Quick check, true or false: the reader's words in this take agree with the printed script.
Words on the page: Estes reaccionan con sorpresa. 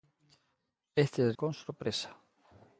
false